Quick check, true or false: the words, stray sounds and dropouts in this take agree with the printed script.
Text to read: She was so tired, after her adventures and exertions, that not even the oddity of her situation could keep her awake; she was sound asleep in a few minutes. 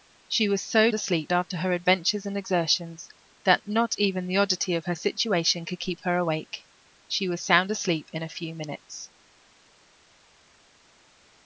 false